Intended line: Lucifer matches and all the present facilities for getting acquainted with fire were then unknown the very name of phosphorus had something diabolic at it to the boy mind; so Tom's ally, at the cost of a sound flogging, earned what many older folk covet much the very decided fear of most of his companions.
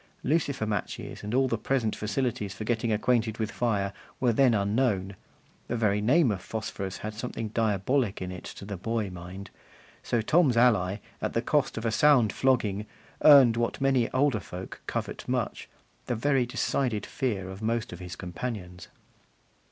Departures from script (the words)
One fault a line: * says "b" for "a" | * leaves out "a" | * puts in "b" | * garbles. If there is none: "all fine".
* says "in" for "at"